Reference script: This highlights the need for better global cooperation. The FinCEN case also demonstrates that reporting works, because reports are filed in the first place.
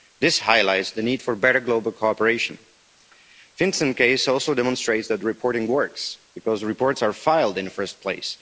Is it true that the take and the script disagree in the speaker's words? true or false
false